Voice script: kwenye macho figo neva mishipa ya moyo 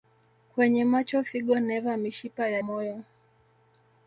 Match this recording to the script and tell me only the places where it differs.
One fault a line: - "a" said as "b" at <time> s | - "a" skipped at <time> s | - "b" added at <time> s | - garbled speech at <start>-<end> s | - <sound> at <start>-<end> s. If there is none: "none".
none